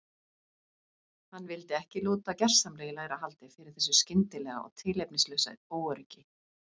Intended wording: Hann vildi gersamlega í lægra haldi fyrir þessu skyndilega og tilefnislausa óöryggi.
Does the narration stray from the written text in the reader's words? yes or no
yes